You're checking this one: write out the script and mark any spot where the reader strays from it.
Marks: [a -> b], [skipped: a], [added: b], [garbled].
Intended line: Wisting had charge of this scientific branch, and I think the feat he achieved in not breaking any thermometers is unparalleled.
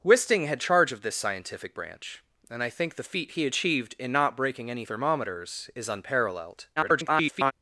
Wisting had charge of this scientific branch, and I think the feat he achieved in not breaking any thermometers is unparalleled. [garbled]